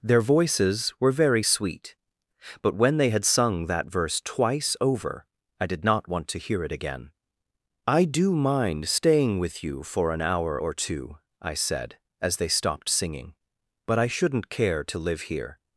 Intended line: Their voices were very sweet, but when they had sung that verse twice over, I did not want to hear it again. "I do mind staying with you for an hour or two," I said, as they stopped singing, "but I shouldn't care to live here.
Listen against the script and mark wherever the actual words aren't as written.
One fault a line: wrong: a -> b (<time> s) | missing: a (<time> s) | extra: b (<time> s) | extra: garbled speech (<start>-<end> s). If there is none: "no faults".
no faults